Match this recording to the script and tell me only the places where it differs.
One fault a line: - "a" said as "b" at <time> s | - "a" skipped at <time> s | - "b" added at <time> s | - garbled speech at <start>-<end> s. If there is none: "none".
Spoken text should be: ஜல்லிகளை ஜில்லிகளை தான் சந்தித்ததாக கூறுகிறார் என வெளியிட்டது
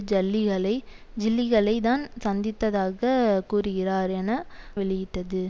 none